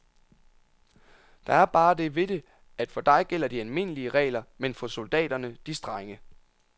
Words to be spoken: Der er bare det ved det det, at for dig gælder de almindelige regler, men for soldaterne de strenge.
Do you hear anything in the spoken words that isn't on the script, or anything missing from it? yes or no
yes